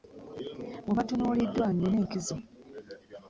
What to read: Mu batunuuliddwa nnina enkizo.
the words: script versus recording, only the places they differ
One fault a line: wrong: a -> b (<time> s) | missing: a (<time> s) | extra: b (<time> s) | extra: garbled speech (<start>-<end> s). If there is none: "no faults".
no faults